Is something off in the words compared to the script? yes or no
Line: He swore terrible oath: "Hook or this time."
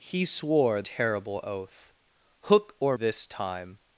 no